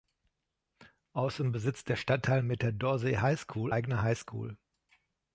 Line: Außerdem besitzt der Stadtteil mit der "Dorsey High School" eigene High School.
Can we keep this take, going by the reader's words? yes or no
yes